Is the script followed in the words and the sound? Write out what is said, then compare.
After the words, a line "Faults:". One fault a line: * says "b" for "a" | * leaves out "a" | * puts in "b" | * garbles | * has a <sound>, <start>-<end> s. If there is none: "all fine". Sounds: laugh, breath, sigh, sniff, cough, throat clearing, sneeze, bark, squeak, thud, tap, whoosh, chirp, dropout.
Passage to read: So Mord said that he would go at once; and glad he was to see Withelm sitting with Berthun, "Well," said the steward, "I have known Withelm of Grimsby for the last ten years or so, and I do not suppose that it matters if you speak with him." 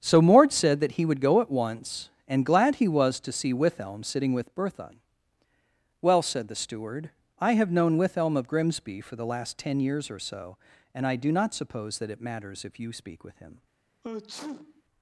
So Mord said that he would go at once; and glad he was to see Withelm sitting with Berthun, "Well," said the steward, "I have known Withelm of Grimsby for the last ten years or so, and I do not suppose that it matters if you speak with him."
Faults:
* has a sneeze, 14.0-14.8 s